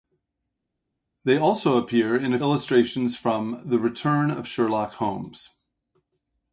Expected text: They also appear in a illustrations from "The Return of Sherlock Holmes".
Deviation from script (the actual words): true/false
false